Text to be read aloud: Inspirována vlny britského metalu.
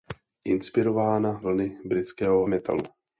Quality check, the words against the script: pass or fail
pass